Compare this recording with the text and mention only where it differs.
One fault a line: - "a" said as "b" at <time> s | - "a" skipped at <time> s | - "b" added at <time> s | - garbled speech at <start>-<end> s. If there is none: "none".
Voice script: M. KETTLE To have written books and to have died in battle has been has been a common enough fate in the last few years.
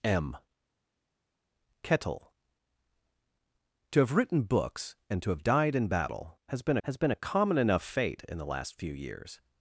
none